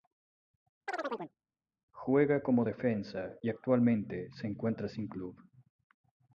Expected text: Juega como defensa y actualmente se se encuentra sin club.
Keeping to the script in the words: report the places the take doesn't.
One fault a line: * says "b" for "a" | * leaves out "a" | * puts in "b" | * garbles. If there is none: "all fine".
* leaves out "se"